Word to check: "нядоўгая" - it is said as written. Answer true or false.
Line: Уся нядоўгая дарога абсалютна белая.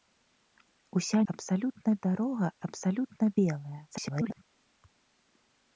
false